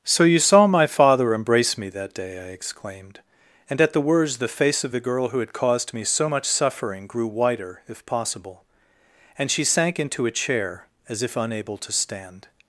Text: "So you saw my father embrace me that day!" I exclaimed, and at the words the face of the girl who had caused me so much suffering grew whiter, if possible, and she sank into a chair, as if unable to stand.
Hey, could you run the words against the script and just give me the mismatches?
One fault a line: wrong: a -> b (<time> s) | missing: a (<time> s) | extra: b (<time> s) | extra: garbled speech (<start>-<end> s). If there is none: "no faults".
no faults